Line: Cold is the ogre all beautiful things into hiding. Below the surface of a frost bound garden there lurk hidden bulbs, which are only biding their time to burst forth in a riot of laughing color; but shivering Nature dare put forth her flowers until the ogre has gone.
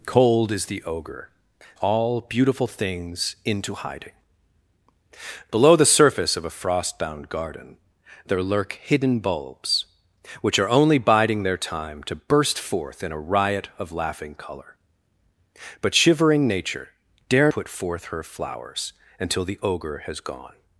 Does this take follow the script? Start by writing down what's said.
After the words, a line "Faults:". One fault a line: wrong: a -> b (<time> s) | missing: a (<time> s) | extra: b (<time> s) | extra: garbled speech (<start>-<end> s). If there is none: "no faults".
Cold is the ogre all beautiful things into hiding. Below the surface of a frost bound garden there lurk hidden bulbs, which are only biding their time to burst forth in a riot of laughing color; but shivering Nature dare put forth her flowers until the ogre has gone.
Faults:
no faults